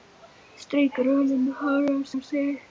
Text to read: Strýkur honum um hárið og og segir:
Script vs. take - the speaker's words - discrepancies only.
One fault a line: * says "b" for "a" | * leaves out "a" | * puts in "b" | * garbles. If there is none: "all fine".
all fine